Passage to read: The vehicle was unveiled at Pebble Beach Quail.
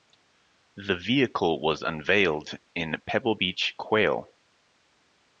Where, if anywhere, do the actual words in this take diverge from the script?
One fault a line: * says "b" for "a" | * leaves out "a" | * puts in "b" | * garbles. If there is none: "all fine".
* says "in" for "at"